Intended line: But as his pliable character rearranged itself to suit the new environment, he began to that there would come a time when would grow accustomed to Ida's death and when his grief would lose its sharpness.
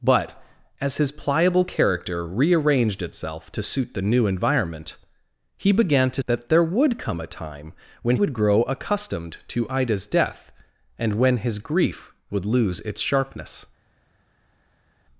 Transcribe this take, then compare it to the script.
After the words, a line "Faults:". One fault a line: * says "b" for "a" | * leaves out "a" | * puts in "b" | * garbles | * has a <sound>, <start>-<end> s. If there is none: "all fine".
But as his pliable character rearranged itself to suit the new environment, he began to that there would come a time when would grow accustomed to Ida's death and when his grief would lose its sharpness.
Faults:
all fine